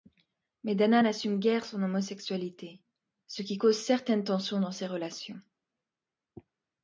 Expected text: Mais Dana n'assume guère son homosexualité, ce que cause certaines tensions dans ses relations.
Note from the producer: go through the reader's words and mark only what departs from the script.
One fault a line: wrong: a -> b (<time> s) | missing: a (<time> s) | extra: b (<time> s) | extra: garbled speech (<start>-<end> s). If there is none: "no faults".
wrong: que -> qui (3.4 s)